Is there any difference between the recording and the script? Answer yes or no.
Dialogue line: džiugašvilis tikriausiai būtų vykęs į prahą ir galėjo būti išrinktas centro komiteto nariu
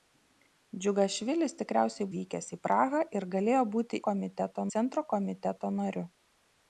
yes